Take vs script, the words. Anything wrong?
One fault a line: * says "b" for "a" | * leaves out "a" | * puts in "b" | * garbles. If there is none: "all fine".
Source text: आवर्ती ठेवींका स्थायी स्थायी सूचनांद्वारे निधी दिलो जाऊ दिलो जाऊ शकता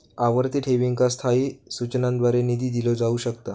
* leaves out "स्थायी"
* leaves out "दिलो जाऊ"